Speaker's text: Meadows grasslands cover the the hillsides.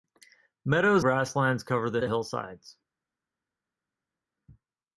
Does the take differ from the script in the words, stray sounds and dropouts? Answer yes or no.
no